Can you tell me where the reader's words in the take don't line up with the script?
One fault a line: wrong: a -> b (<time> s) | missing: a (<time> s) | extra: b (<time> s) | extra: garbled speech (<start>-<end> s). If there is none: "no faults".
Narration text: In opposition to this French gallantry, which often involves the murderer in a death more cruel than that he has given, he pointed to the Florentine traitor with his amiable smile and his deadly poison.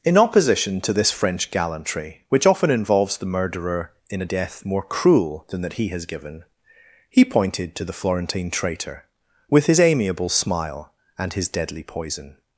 no faults